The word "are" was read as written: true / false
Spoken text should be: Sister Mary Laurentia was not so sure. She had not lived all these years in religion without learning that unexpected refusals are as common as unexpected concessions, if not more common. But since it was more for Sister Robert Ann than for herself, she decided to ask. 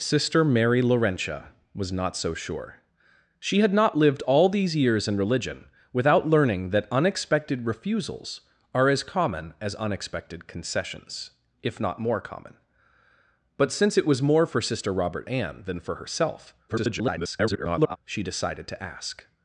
true